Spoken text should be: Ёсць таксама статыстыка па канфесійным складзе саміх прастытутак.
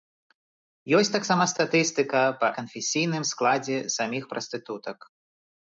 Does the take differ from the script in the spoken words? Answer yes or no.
no